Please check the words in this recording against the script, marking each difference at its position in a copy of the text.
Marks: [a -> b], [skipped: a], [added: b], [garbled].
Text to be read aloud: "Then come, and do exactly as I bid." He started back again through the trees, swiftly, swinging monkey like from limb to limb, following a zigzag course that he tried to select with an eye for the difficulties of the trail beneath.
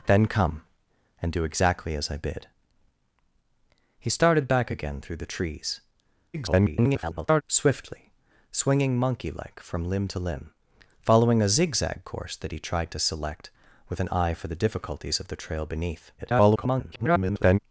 "Then come, and do exactly as I bid." He started back again through the trees, [garbled] swiftly, swinging monkey like from limb to limb, following a zigzag course that he tried to select with an eye for the difficulties of the trail beneath. [garbled]